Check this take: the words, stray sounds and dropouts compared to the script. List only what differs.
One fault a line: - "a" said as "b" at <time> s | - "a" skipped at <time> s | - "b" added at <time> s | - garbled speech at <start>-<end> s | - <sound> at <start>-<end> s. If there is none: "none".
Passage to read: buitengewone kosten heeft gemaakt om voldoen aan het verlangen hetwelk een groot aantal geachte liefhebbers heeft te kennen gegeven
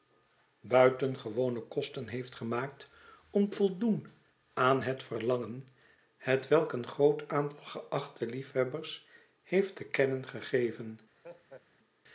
- laugh at 11.2-11.7 s